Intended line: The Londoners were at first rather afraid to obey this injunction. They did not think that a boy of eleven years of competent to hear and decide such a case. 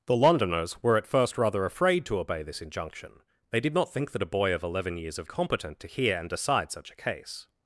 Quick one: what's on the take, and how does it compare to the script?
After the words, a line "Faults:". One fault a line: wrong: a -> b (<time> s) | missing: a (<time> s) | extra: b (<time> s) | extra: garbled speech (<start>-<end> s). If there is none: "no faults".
The Londoners were at first rather afraid to obey this injunction. They did not think that a boy of eleven years of competent to hear and decide such a case.
Faults:
no faults